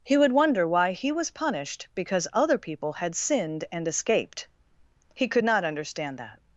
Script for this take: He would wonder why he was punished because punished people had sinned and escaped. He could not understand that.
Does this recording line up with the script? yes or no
no